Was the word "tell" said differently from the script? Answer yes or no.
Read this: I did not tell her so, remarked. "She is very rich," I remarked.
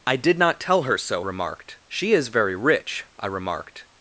no